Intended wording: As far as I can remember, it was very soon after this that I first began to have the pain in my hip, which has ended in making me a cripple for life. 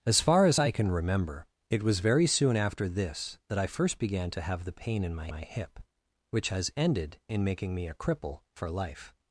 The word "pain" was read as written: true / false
true